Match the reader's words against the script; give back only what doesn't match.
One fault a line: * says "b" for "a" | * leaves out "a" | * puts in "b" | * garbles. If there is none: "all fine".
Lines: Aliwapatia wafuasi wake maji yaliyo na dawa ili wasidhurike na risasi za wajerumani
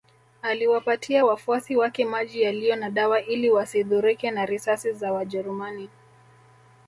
all fine